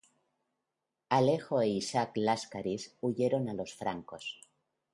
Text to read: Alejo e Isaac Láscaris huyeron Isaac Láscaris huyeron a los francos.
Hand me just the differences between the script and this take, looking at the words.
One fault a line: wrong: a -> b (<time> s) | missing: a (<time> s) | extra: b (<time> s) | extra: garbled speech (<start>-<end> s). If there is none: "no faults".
missing: Isaac Láscaris huyeron (3.5 s)